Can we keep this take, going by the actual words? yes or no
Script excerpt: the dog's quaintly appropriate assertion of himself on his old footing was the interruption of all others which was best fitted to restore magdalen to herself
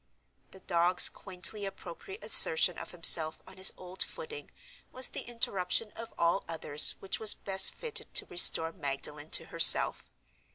yes